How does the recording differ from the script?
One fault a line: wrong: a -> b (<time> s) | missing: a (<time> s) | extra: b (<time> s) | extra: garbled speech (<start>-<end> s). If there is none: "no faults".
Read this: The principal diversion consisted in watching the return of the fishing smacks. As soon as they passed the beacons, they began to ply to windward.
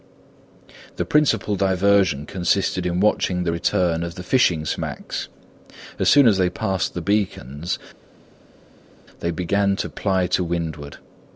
no faults